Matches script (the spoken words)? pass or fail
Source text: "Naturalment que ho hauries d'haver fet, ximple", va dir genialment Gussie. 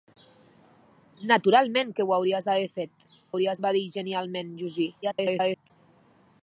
fail